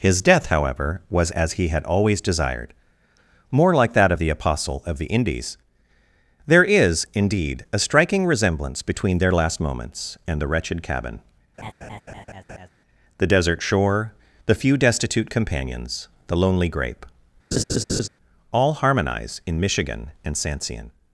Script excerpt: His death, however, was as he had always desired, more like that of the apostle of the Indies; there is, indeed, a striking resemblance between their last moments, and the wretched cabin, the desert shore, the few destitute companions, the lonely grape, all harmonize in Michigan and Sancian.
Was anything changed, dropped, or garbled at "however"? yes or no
no